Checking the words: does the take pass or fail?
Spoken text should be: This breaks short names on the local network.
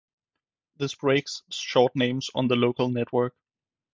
pass